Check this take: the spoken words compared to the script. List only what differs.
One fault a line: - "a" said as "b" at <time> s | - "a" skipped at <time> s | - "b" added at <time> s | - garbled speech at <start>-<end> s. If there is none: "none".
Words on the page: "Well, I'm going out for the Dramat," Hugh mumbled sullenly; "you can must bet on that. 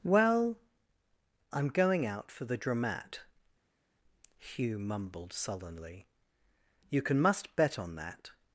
none